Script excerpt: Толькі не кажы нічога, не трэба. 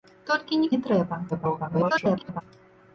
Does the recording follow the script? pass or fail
fail